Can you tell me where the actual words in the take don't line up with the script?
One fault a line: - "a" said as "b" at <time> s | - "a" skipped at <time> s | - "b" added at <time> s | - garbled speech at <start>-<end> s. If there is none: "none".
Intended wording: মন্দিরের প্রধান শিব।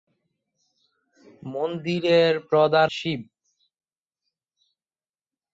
none